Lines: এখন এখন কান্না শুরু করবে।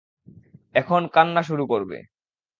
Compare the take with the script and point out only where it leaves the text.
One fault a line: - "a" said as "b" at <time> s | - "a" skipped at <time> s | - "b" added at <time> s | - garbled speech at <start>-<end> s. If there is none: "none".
- "এখন" skipped at 1.0 s